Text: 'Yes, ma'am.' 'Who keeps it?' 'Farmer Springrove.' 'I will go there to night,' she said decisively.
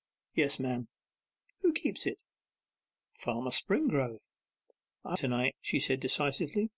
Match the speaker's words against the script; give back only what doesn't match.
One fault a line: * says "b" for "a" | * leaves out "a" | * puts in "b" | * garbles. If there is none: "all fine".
* leaves out "will go there"